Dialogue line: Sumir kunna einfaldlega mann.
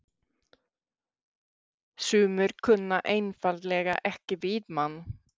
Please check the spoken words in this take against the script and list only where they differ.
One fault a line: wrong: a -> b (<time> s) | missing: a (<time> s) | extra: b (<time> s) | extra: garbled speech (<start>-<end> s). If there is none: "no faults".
extra: ekki við (4.1 s)